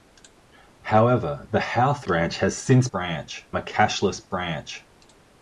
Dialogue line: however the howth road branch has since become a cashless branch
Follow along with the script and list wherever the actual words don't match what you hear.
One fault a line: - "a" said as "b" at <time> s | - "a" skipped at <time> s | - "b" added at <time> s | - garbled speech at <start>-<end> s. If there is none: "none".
- "road" skipped at 2.1 s
- "become" said as "branch" at 2.9 s